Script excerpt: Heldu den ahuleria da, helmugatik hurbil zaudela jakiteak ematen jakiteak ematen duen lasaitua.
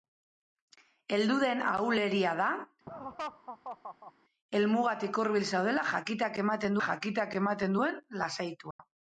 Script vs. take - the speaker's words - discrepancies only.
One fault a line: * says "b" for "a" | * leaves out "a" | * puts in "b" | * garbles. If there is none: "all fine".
all fine